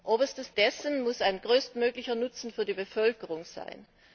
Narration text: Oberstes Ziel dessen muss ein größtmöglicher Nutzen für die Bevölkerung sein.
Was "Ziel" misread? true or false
true